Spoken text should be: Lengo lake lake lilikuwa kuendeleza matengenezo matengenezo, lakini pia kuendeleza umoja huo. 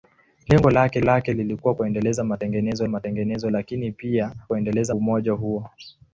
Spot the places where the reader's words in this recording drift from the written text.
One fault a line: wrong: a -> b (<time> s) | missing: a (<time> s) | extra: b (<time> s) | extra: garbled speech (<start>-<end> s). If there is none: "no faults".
no faults